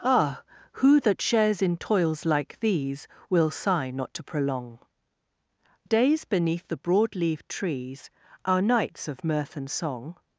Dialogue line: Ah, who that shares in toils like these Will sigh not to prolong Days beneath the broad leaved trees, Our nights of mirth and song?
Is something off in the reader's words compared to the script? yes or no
no